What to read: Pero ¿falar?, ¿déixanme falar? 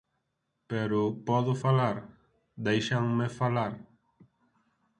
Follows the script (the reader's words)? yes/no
no